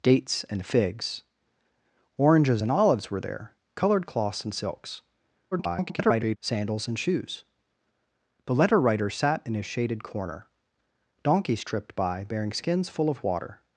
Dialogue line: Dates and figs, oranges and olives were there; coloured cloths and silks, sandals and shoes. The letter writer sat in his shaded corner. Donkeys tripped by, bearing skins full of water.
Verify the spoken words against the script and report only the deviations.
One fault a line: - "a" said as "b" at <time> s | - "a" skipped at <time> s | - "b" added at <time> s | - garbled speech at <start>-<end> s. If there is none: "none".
- garbled speech at 5.5-6.4 s